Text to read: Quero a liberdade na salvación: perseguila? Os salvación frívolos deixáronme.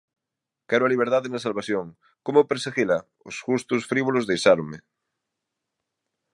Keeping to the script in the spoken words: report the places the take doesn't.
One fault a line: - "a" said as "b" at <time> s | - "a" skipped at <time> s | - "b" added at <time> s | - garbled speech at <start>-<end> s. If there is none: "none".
- "como" added at 2.2 s
- "salvación" said as "gustos" at 3.5 s